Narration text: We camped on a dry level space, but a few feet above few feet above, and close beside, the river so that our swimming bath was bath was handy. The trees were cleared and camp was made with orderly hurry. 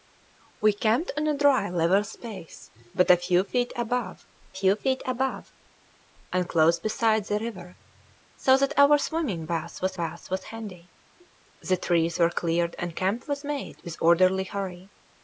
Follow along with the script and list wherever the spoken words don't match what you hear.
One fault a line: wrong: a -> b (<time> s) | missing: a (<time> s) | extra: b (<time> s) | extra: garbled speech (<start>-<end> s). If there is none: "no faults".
no faults